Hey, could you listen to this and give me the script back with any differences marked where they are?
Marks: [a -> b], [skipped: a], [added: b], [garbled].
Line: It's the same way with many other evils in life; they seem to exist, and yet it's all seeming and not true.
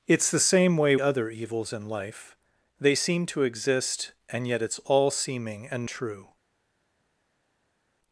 It's the same way [skipped: with many] other evils in life; they seem to exist, and yet it's all seeming and [skipped: not] true.